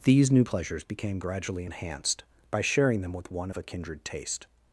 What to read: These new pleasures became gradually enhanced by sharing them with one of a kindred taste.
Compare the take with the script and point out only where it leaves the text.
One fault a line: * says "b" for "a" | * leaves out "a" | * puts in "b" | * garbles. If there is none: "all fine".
all fine